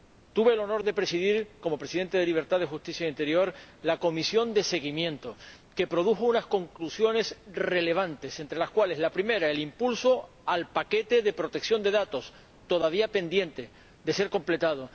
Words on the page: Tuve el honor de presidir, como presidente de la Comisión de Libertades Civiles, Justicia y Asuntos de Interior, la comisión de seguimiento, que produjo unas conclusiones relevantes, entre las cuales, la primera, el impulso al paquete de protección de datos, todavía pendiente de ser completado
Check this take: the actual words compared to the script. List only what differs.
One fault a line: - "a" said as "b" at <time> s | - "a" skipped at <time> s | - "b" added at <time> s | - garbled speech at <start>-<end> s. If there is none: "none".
none